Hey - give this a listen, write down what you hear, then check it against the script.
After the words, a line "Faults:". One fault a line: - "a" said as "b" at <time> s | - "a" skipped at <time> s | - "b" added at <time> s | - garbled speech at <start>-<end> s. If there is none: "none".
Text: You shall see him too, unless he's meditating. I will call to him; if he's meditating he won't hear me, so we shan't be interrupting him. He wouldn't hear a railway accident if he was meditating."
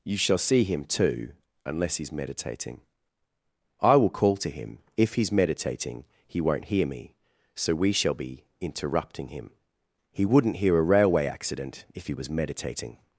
You shall see him too, unless he's meditating. I will call to him; if he's meditating he won't hear me, so we shall be interrupting him. He wouldn't hear a railway accident if he was meditating."
Faults:
- "shan't" said as "shall" at 7.9 s